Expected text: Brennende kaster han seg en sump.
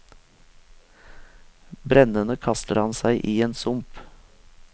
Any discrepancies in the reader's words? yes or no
yes